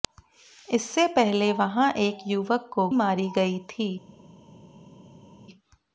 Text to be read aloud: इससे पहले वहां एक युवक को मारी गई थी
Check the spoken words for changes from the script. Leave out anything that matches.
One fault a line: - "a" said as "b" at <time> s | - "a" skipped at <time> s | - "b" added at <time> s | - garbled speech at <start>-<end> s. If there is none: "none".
none